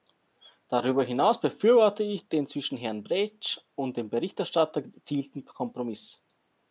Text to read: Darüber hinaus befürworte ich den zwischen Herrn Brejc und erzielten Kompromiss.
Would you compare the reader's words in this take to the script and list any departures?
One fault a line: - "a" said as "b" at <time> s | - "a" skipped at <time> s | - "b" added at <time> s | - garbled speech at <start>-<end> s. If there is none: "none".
- "dem Berichterstatter" added at 4.0 s